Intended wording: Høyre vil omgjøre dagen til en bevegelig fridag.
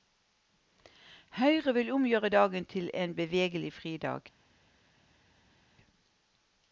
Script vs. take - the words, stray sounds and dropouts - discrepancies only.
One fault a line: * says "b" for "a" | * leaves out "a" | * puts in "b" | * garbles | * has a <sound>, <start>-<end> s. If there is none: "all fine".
all fine